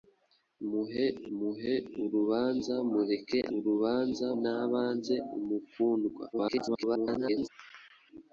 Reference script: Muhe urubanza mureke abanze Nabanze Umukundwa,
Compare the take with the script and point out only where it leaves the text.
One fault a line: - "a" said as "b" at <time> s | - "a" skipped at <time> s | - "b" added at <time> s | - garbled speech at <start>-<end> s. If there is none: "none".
- "muhe" added at 1.4 s
- "abanze" said as "urubanza" at 3.6 s
- garbled speech at 6.3-7.5 s